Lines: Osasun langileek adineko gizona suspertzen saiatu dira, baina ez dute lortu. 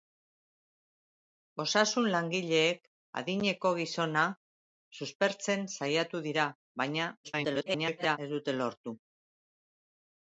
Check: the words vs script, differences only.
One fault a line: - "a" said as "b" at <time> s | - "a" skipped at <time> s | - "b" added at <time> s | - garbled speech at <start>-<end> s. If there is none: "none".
- garbled speech at 7.2-8.2 s